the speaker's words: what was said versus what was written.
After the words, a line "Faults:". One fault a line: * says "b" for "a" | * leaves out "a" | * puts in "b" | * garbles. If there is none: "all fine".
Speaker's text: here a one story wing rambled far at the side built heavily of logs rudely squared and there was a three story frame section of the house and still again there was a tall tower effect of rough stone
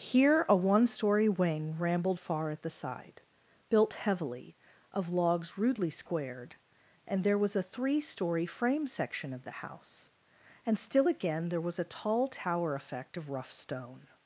here a one story wing rambled far at the side built heavily of logs rudely squared and there was a three story frame section of the house and still again there was a tall tower effect of rough stone
Faults:
all fine